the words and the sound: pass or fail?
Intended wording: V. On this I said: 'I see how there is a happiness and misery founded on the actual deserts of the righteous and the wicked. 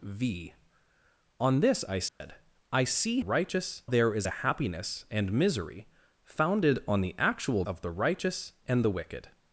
fail